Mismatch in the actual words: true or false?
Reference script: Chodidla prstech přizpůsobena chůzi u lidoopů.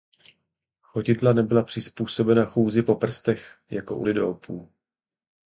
true